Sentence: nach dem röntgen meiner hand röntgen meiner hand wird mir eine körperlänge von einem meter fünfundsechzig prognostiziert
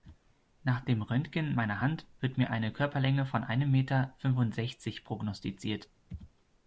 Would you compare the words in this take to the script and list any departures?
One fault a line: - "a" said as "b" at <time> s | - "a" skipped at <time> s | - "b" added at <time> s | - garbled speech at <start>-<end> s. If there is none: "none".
- "röntgen meiner hand" skipped at 2.1 s